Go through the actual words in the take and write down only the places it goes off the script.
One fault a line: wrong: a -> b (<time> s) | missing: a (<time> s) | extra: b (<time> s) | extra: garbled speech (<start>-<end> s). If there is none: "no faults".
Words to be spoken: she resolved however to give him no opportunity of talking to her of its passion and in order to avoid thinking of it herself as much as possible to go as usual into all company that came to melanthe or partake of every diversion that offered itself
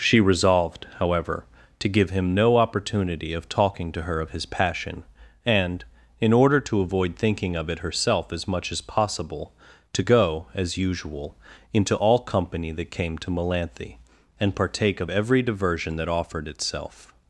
wrong: its -> his (4.3 s)
wrong: or -> and (14.4 s)